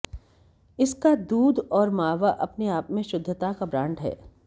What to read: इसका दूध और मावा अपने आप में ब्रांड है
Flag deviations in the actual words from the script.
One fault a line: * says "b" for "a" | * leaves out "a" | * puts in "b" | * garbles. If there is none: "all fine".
* puts in "शुद्धता का"